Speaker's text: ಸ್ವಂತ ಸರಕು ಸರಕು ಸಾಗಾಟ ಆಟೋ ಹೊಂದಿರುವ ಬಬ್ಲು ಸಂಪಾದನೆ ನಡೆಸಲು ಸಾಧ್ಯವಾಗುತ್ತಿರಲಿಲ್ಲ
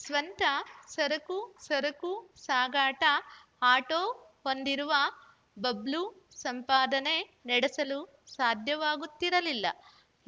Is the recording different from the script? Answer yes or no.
no